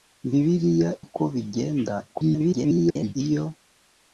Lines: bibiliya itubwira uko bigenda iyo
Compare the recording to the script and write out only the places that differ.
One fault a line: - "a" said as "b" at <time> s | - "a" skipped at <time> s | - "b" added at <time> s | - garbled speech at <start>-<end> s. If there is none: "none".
- "itubwira" skipped at 0.9 s
- garbled speech at 2.1-3.1 s